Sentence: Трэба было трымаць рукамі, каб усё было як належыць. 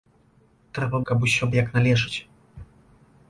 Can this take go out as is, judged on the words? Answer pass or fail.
fail